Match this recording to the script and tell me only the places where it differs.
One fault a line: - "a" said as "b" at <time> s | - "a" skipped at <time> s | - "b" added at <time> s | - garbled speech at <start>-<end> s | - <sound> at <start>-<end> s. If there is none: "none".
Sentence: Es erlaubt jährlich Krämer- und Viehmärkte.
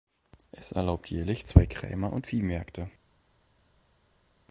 - "zwei" added at 1.4 s